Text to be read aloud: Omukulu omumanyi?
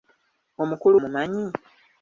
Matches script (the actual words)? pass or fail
pass